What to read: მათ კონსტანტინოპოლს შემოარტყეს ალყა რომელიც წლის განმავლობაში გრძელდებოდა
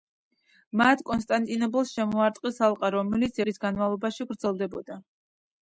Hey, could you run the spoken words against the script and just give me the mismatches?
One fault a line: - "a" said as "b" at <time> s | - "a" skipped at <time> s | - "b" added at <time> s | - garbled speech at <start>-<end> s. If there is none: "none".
none